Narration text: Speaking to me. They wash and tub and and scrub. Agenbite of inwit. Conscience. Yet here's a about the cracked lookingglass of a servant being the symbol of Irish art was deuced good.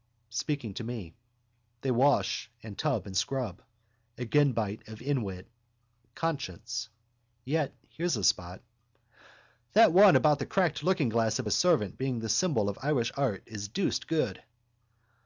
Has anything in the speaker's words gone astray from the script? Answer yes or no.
yes